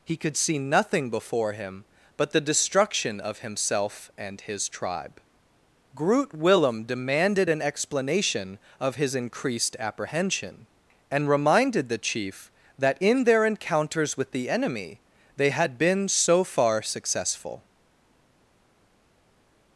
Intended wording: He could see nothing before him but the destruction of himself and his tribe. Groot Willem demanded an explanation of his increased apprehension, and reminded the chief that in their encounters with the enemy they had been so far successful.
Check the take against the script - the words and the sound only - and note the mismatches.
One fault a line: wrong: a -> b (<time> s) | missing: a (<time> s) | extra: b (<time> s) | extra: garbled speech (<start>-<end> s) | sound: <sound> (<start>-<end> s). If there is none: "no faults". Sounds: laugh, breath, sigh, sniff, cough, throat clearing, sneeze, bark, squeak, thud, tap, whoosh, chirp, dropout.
no faults